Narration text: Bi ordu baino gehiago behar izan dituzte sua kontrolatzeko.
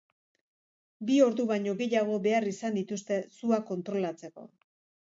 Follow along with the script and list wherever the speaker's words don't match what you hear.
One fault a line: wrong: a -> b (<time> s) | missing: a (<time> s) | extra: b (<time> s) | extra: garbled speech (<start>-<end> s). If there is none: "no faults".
no faults